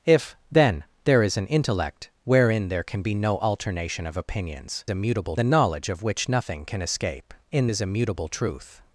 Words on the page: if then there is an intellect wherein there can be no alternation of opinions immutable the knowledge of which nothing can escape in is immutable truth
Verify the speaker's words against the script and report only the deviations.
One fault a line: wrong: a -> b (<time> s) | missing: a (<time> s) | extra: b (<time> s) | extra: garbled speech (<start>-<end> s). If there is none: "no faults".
no faults